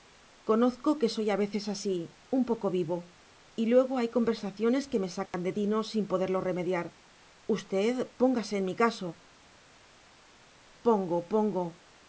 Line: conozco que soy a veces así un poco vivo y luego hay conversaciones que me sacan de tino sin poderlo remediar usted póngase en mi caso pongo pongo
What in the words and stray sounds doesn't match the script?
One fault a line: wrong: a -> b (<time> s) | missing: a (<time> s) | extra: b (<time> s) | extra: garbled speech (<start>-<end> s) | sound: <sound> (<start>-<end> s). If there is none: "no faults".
sound: dropout (5.3-5.3 s)